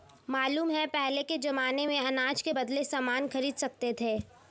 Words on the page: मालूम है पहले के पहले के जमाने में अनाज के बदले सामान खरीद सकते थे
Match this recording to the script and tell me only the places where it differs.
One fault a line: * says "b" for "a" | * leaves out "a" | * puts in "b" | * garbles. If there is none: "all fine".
* leaves out "पहले के"